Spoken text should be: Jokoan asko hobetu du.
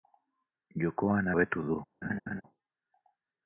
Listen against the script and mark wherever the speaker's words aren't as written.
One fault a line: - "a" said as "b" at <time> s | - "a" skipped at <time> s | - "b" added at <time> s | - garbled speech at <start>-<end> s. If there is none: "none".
- "asko" skipped at 1.3 s